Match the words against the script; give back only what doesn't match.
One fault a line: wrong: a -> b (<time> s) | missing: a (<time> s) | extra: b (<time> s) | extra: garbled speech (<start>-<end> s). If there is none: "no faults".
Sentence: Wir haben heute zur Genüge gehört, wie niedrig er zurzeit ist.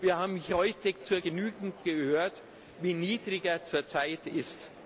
no faults